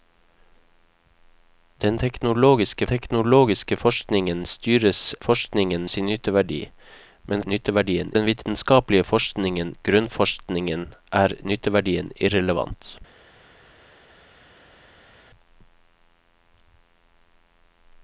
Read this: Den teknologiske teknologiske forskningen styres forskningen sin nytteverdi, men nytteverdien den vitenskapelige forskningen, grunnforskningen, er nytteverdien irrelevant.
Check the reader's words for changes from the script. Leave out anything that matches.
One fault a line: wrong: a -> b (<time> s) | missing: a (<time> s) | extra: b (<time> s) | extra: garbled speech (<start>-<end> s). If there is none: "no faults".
no faults